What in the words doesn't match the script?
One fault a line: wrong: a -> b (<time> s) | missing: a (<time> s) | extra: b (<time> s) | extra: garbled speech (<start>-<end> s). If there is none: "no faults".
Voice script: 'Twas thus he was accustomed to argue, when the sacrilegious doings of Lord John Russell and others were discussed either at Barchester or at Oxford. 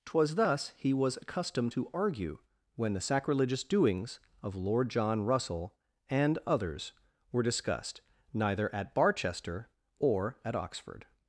wrong: either -> neither (8.3 s)